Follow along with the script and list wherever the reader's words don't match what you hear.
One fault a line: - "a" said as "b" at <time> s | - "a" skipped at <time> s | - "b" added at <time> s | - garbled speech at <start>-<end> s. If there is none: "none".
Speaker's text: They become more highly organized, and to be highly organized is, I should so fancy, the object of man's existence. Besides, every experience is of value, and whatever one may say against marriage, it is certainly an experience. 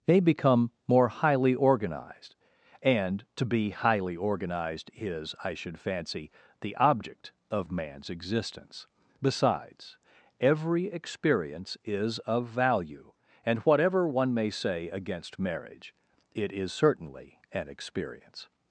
- "so" skipped at 5.8 s